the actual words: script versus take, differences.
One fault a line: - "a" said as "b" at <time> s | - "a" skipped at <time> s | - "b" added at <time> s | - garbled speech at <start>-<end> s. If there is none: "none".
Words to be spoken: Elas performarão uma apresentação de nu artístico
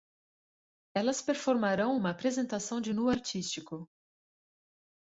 none